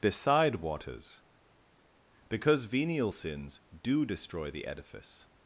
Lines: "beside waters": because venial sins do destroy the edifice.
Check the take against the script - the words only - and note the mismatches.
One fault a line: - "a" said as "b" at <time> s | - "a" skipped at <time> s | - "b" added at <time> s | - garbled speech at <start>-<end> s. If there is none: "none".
none